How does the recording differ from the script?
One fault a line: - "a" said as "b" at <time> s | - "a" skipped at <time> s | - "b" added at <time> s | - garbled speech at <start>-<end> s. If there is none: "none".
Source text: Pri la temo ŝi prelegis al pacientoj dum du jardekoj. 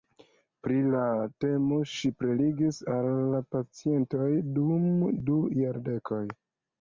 none